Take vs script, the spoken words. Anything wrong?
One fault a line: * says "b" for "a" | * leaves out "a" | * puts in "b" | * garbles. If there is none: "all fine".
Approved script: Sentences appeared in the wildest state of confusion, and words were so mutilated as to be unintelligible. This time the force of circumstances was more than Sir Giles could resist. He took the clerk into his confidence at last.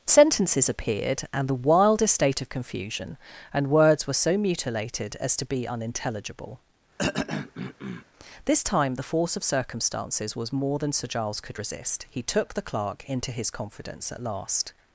* says "and" for "in"